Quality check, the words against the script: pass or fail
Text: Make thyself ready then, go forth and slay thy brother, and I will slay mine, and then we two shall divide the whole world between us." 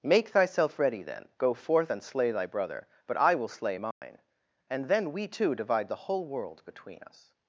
fail